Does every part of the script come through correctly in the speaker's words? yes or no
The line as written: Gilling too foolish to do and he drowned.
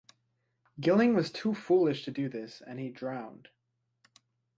no